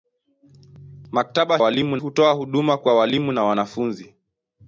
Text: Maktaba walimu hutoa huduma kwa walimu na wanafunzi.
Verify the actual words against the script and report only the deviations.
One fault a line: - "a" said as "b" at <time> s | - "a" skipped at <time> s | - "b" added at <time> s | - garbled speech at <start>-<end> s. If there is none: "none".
none